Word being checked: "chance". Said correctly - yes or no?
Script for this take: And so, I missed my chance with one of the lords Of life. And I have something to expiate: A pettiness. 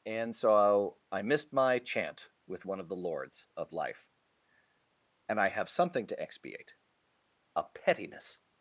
no